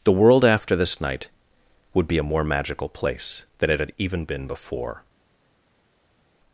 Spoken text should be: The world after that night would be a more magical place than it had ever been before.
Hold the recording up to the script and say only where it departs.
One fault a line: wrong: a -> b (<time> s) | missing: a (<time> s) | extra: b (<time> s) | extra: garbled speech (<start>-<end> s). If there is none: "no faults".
wrong: that -> this (0.8 s)
wrong: ever -> even (4.0 s)